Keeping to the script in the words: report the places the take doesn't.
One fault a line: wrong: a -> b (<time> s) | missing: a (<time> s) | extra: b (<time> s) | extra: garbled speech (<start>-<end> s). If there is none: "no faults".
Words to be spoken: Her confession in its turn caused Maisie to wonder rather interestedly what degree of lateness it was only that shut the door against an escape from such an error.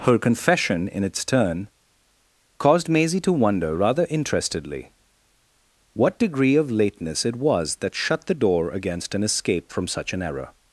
missing: only (7.8 s)